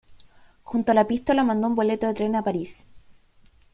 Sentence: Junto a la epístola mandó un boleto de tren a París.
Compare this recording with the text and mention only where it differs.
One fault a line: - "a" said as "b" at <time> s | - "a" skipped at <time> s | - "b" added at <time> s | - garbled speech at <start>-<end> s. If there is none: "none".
none